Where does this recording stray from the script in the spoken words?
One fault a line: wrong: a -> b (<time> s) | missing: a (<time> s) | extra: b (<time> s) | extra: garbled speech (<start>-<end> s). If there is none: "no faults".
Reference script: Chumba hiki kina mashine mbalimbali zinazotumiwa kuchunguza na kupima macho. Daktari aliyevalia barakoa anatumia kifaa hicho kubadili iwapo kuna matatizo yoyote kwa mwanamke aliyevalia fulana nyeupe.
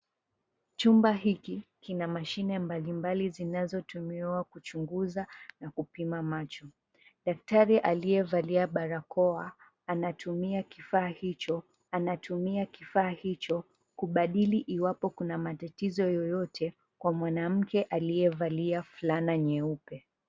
extra: anatumia kifaa hicho (11.9 s)